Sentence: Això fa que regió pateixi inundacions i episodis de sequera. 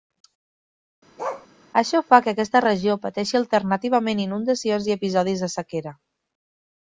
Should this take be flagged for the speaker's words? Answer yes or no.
yes